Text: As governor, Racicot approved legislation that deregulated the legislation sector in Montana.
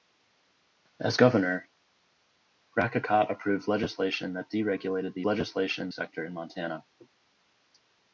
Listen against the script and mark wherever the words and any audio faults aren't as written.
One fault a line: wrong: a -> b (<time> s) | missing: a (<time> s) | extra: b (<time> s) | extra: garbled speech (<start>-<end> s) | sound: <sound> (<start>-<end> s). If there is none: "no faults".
no faults